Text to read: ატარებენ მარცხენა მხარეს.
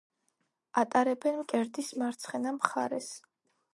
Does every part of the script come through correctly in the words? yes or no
no